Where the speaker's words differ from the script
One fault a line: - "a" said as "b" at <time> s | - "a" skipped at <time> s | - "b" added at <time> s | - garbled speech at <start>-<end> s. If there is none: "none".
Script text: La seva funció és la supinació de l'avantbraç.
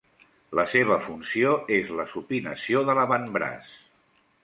none